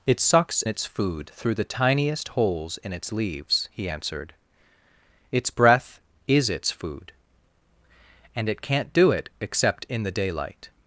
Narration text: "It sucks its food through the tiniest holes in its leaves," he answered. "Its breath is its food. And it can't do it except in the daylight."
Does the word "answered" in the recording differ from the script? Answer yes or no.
no